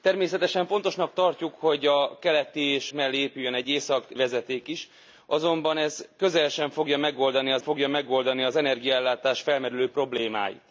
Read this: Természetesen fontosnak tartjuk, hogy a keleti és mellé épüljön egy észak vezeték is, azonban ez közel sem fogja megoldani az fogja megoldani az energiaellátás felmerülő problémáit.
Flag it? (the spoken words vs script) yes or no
no